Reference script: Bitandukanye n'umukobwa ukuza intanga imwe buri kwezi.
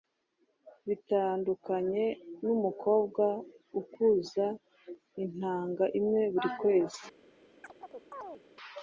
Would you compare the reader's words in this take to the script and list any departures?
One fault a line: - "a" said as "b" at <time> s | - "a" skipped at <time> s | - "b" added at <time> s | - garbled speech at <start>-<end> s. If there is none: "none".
none